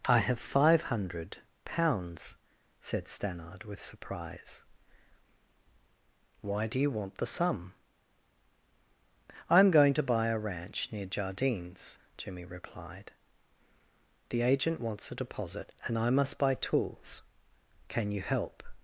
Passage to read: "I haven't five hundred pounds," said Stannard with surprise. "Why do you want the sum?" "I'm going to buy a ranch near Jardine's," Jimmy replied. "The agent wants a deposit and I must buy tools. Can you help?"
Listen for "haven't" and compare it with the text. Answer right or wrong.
wrong